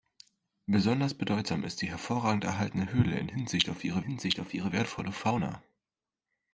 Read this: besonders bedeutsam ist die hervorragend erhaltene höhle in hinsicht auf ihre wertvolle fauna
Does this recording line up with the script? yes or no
no